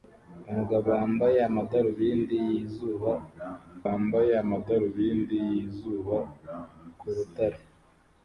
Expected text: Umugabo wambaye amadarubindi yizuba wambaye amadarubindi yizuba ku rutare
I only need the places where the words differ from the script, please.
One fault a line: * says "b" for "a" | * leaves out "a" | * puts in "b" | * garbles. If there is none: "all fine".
all fine